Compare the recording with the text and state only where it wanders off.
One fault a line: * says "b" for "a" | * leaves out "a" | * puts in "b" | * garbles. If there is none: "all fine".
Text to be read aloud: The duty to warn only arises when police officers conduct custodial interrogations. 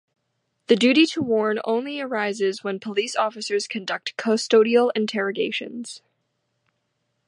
all fine